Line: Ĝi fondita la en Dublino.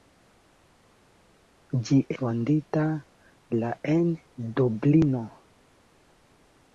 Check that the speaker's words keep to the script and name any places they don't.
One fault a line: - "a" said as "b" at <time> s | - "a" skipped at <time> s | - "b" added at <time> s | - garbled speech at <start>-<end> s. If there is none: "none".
none